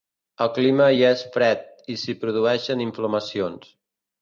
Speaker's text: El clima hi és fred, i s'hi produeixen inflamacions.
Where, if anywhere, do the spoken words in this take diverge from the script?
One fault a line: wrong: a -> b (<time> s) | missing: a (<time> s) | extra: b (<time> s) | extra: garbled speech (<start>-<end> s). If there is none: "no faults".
no faults